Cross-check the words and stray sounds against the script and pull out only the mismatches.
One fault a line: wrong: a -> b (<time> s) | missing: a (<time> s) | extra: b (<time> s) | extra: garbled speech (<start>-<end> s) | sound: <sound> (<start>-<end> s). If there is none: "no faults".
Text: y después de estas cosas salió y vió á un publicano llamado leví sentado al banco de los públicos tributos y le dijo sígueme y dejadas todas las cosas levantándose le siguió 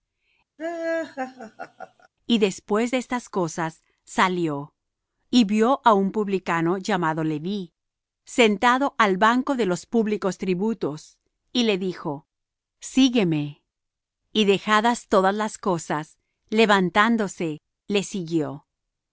sound: laugh (0.6-2.1 s)